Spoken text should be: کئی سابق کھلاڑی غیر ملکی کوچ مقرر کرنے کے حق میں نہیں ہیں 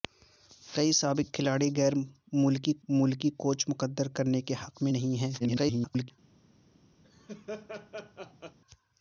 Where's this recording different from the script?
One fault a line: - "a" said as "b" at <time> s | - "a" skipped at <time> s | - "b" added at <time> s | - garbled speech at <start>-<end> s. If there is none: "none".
- "ملکی" added at 2.9 s
- garbled speech at 5.4-6.1 s